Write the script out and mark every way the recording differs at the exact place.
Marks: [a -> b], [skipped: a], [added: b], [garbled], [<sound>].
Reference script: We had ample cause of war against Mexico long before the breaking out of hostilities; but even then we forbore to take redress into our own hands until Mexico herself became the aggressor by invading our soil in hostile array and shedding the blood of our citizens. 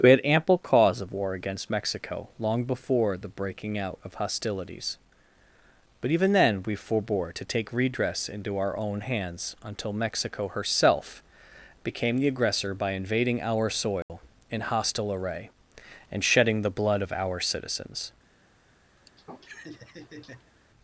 We had ample cause of war against Mexico long before the breaking out of hostilities; but even then we forbore to take redress into our own hands until Mexico herself became the aggressor by invading our soil [dropout] in hostile array and shedding the blood of our citizens. [laugh]